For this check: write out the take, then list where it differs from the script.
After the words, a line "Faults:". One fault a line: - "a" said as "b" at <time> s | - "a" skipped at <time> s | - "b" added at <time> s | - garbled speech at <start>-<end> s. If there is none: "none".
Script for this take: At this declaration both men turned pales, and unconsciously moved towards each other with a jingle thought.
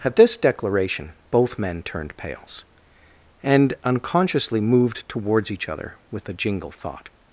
At this declaration both men turned pales, and unconsciously moved towards each other with a jingle thought.
Faults:
none